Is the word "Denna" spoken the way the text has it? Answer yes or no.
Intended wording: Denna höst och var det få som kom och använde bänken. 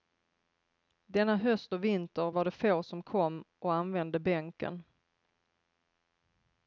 yes